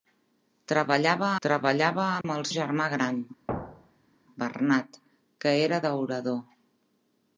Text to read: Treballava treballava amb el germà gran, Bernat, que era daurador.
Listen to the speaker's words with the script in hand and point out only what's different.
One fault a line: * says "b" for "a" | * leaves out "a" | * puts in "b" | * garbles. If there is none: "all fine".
all fine